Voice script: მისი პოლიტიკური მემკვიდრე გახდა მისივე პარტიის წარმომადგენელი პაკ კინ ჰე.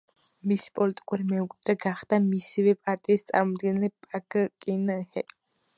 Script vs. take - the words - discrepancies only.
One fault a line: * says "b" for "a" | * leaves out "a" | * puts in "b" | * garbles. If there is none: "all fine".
all fine